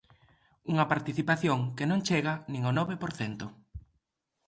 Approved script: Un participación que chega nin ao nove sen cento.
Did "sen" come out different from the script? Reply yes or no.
yes